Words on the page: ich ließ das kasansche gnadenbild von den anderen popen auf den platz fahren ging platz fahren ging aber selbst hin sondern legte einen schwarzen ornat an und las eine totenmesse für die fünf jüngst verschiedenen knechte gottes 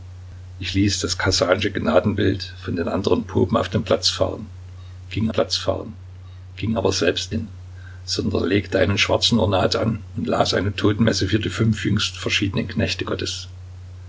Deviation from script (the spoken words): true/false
false